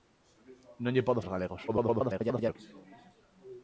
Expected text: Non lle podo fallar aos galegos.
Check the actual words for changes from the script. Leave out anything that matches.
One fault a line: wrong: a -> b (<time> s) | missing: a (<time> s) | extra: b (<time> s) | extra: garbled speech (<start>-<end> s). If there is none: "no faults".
missing: fallar (1.2 s)
extra: garbled speech (1.7-2.6 s)